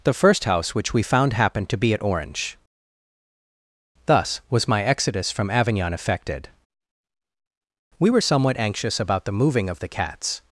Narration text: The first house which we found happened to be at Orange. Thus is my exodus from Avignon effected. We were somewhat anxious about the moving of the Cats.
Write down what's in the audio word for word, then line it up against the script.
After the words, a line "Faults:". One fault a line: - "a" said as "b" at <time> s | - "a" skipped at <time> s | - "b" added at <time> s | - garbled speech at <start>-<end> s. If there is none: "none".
The first house which we found happened to be at Orange. Thus was my exodus from Avignon effected. We were somewhat anxious about the moving of the Cats.
Faults:
- "is" said as "was" at 4.5 s